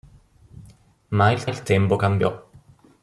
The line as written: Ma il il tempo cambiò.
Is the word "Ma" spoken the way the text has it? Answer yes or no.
yes